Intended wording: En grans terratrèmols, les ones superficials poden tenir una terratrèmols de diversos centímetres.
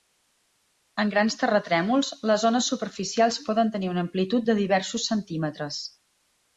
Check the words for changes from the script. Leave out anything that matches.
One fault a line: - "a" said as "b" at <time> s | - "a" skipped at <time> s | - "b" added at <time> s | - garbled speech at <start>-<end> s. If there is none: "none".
- "terratrèmols" said as "amplitud" at 4.1 s